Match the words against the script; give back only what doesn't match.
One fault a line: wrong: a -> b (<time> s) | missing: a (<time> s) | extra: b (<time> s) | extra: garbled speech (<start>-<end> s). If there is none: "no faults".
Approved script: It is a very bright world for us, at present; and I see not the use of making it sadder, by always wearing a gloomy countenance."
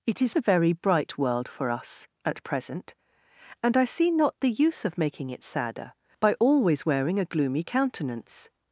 no faults